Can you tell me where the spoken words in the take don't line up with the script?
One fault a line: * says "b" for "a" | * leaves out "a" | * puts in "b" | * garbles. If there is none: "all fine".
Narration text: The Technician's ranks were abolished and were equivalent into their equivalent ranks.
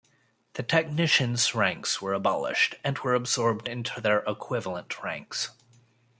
* says "absorbed" for "equivalent"